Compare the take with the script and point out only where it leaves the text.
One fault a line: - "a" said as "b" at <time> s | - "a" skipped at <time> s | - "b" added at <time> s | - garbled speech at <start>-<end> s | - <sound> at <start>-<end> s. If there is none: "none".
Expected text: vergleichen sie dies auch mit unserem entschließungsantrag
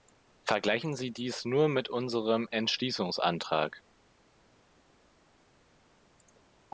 - "auch" said as "nur" at 1.4 s